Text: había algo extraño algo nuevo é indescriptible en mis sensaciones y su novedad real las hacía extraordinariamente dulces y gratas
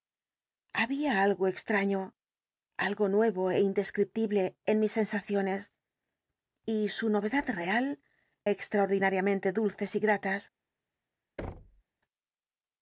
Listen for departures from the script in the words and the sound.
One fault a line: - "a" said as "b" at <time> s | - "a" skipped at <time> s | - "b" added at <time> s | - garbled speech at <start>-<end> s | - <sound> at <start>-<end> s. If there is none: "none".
- "las hacía" skipped at 7.9 s
- thud at 11.4-11.8 s